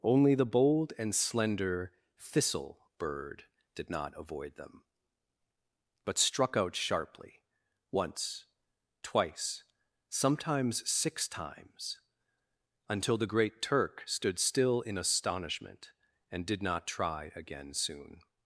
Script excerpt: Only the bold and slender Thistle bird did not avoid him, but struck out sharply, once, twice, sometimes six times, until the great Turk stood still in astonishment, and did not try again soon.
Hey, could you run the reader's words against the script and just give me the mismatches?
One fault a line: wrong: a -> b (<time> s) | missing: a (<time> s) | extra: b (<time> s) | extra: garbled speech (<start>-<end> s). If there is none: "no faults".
wrong: him -> them (4.5 s)